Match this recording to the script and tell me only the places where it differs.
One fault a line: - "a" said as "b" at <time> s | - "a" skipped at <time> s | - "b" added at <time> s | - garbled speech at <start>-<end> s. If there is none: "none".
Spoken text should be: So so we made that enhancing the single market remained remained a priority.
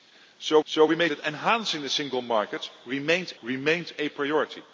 none